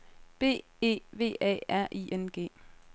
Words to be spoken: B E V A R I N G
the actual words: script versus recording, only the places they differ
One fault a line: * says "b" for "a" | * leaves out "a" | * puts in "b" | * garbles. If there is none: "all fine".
all fine